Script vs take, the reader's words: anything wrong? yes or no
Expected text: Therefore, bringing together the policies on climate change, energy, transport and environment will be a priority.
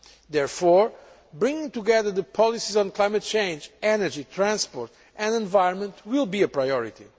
no